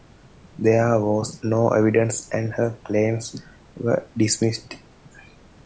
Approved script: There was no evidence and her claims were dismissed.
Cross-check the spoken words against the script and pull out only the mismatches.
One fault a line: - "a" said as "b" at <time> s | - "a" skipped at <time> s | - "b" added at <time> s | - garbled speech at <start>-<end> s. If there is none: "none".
none